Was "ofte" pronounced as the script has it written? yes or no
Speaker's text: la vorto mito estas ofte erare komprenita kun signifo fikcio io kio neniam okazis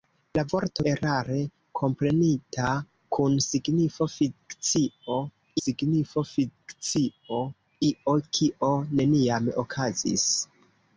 no